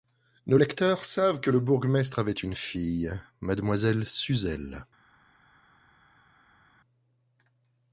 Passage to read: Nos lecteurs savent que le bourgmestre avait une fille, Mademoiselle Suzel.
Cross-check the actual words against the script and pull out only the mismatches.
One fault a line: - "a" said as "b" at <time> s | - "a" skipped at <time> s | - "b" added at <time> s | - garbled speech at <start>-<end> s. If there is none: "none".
none